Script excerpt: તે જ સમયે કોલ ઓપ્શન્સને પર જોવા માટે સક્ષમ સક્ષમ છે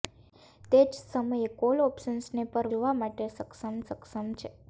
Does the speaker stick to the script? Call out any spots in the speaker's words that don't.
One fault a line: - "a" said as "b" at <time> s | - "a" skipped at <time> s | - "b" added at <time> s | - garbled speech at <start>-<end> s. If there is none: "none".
none